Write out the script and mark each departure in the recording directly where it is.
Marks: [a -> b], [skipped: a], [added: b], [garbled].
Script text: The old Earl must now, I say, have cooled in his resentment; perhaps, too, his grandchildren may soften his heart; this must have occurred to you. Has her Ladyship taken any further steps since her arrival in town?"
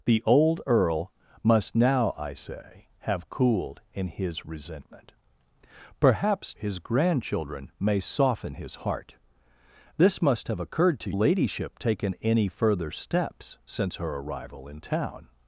The old Earl must now, I say, have cooled in his resentment; perhaps, [skipped: too,] his grandchildren may soften his heart; this must have occurred to [skipped: you. Has her] Ladyship taken any further steps since her arrival in town?"